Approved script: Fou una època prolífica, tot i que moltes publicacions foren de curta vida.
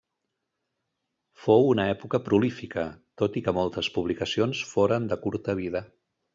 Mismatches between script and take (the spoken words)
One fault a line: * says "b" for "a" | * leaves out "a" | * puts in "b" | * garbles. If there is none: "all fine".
all fine